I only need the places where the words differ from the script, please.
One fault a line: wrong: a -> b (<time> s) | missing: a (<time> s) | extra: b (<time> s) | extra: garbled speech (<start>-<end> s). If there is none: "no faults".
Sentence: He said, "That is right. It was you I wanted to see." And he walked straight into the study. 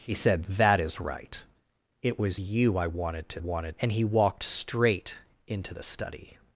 wrong: see -> wanted (3.4 s)